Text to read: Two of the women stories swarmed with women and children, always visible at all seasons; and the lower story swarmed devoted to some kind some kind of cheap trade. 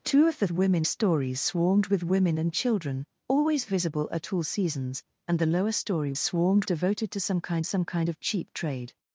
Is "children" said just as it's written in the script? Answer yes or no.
yes